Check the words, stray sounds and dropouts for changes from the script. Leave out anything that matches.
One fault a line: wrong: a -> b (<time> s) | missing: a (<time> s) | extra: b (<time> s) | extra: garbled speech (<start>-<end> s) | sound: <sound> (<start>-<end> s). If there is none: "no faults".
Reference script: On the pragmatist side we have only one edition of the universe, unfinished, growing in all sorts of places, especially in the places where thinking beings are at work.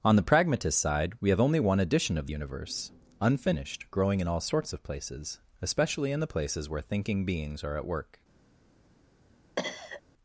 missing: the (2.3 s)
sound: cough (9.6-10.0 s)